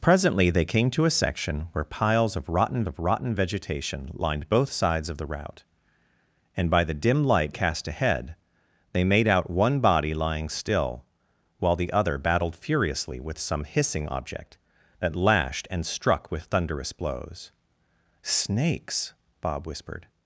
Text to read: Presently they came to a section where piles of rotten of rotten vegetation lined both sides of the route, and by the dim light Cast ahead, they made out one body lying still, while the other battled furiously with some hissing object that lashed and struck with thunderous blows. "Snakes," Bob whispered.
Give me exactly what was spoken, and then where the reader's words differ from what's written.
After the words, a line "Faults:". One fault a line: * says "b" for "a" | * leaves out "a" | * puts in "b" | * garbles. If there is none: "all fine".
Presently they came to a section where piles of rotten of rotten vegetation lined both sides of the route, and by the dim light Cast ahead, they made out one body lying still, while the other battled furiously with some hissing object that lashed and struck with thunderous blows. "Snakes," Bob whispered.
Faults:
all fine